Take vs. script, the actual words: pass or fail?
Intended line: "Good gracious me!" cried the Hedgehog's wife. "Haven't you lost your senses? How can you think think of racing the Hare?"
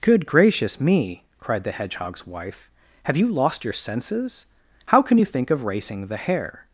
fail